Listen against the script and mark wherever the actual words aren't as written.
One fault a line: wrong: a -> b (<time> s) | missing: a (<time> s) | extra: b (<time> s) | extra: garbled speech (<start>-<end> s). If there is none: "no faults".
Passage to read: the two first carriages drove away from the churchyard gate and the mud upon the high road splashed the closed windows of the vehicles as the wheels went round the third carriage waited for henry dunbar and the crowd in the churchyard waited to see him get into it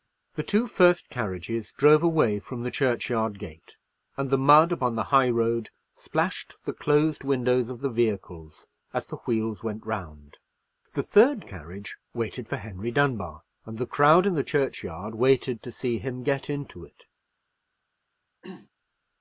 no faults